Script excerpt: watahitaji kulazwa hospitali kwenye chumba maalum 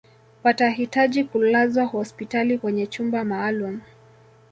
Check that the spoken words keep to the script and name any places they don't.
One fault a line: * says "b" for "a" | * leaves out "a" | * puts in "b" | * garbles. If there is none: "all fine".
all fine